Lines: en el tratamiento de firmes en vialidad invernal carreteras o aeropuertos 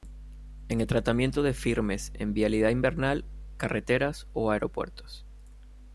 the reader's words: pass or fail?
pass